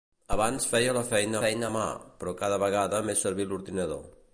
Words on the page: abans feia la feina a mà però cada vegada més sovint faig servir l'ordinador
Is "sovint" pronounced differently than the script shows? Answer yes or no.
yes